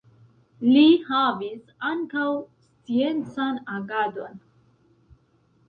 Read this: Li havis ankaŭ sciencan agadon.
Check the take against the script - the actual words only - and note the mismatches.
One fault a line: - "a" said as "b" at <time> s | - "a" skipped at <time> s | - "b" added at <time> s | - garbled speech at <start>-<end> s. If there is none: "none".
none